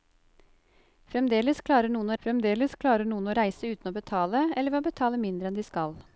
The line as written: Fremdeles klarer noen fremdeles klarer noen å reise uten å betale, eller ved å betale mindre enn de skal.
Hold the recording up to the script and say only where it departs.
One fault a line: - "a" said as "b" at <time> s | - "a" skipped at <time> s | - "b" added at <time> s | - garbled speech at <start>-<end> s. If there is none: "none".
none